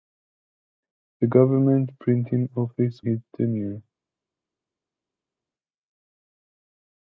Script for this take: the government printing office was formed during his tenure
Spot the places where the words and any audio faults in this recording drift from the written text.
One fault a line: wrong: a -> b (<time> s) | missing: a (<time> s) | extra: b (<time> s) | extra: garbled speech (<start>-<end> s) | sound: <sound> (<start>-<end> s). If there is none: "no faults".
missing: was formed during (3.0 s)